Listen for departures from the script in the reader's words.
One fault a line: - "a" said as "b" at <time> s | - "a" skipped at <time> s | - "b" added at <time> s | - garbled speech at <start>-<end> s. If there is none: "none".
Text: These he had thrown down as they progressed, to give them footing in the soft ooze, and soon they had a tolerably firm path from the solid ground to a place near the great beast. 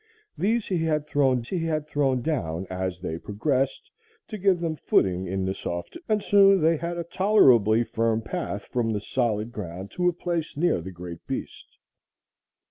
- "he had thrown" added at 1.5 s
- "ooze" skipped at 5.9 s